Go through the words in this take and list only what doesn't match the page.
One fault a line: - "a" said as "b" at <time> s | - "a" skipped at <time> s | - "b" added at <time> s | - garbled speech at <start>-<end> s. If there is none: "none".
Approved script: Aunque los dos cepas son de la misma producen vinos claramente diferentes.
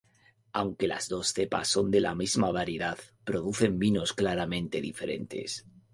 - "los" said as "las" at 0.9 s
- "variedad" added at 2.5 s